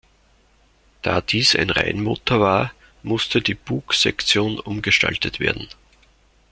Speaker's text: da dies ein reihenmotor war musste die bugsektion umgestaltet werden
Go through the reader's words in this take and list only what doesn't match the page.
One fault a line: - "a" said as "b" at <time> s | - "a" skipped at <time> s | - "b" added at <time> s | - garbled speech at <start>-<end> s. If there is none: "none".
none